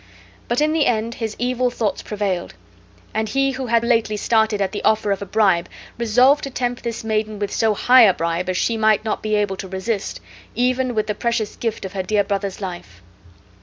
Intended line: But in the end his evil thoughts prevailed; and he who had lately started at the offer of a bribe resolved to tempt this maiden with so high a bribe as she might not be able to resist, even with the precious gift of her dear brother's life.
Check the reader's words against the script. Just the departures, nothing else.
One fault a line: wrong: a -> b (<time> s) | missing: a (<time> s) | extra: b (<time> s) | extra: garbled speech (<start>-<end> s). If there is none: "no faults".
no faults